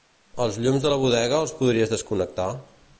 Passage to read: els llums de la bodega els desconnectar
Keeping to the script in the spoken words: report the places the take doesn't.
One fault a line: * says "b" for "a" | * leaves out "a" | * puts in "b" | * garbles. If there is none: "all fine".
* puts in "podries"